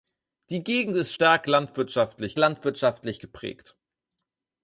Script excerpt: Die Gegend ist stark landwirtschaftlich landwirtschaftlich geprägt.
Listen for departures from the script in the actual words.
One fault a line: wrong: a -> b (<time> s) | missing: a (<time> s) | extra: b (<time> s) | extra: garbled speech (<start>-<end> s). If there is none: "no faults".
no faults